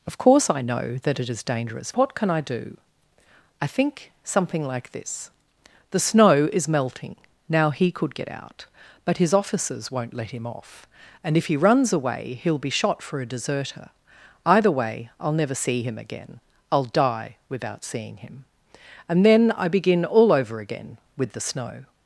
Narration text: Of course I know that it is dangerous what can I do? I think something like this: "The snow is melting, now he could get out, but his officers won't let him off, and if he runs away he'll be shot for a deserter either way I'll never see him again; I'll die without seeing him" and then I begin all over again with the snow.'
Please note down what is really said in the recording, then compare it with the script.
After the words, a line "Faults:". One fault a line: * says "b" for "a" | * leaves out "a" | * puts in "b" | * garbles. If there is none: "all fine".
Of course I know that it is dangerous what can I do? I think something like this: "The snow is melting, now he could get out, but his officers won't let him off, and if he runs away he'll be shot for a deserter either way I'll never see him again; I'll die without seeing him" and then I begin all over again with the snow.'
Faults:
all fine